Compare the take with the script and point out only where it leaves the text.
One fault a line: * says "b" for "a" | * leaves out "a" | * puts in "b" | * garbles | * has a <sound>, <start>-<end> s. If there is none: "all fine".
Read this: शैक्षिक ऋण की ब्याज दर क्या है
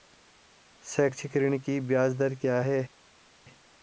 all fine